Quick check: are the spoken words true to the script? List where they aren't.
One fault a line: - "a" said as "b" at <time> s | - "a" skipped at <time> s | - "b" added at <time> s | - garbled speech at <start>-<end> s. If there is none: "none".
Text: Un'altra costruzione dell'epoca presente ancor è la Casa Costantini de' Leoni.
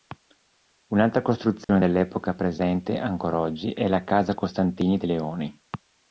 - "oggi" added at 3.3 s